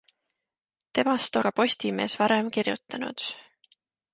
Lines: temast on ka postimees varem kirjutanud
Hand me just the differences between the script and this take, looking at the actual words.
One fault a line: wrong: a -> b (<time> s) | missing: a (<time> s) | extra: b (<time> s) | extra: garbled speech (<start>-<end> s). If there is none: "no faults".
missing: on (1.4 s)